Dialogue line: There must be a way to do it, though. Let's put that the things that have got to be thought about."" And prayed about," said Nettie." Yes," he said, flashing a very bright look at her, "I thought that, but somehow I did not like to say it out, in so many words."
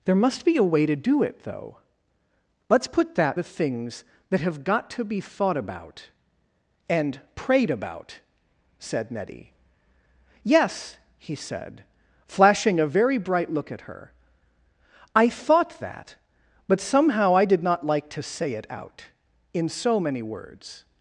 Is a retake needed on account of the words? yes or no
no